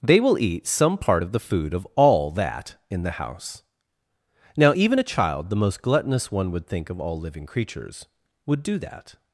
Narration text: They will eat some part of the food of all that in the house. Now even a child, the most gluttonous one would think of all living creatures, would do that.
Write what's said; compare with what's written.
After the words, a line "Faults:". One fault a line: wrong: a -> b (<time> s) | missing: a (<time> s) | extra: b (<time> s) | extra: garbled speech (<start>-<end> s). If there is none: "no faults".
They will eat some part of the food of all that in the house. Now even a child, the most gluttonous one would think of all living creatures, would do that.
Faults:
no faults